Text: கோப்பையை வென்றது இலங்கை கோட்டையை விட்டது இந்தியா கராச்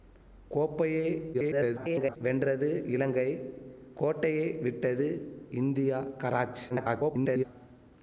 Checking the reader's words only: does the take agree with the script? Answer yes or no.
no